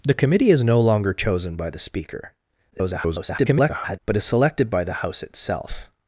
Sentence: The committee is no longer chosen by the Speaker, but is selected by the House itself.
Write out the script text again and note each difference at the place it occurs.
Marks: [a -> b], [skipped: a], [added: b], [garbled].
The committee is no longer chosen by the Speaker, [garbled] but is selected by the House itself.